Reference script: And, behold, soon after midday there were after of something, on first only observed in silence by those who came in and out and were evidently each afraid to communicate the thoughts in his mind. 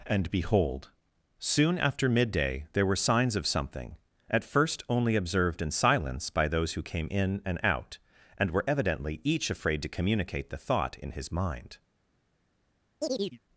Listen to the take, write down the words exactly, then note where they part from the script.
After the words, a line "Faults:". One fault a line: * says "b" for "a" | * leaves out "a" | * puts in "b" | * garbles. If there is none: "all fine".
And, behold, soon after midday there were signs of something, at first only observed in silence by those who came in and out and were evidently each afraid to communicate the thought in his mind.
Faults:
* says "signs" for "after"
* says "at" for "on"
* says "thought" for "thoughts"